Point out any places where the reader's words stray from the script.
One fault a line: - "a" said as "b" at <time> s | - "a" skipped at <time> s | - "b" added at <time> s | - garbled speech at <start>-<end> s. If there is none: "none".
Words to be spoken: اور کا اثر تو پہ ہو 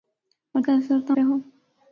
none